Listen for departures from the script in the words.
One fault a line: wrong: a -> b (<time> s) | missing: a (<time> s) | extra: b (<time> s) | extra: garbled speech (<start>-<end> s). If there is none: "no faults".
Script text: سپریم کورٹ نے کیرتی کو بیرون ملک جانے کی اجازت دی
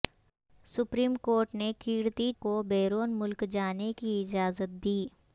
no faults